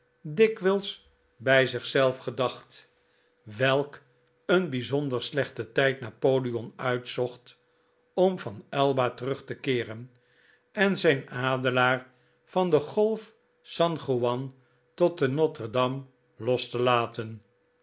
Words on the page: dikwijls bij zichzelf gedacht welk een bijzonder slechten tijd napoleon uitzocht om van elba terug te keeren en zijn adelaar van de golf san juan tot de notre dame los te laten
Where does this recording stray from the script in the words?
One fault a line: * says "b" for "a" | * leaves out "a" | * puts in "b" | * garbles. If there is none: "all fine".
all fine